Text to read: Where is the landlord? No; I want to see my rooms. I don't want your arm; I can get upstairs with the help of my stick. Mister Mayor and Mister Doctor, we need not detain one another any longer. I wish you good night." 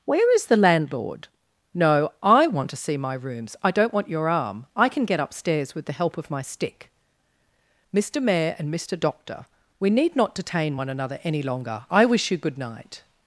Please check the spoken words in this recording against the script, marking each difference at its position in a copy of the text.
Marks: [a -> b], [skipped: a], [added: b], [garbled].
Where is the landlord? No; I want to see my rooms. I don't want your arm; I can get upstairs with the help of my stick. Mister Mayor and Mister Doctor, we need not detain one another any longer. I wish you good night."